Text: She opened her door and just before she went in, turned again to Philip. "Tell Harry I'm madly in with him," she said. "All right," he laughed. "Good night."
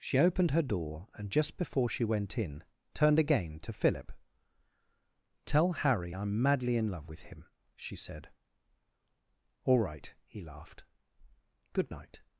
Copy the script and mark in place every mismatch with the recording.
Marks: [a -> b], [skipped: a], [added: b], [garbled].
She opened her door and just before she went in, turned again to Philip. "Tell Harry I'm madly in [added: love] with him," she said. "All right," he laughed. "Good night."